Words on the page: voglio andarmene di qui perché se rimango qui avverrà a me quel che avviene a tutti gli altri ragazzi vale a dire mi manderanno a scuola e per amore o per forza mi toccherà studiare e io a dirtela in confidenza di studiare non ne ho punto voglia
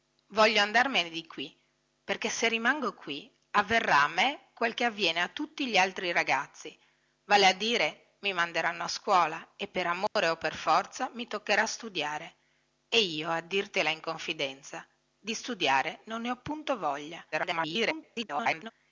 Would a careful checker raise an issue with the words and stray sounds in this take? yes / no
yes